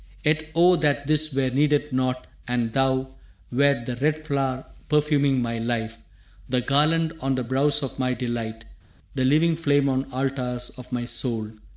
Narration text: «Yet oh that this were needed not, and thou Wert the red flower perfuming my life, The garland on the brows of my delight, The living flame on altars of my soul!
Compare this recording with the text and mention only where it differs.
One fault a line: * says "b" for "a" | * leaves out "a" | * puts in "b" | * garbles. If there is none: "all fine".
all fine